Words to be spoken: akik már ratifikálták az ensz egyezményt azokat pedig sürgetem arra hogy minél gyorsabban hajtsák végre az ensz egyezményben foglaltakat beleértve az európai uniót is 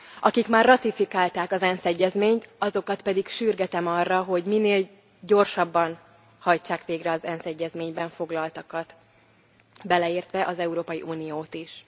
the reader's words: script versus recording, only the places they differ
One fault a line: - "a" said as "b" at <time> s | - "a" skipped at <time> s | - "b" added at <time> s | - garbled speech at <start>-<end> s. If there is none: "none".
none